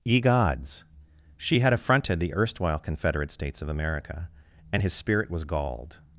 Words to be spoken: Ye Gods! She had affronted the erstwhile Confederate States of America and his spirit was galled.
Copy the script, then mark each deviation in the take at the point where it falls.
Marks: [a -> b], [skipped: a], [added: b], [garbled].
Ye Gods! She had affronted the erstwhile Confederate States of America and his spirit was galled.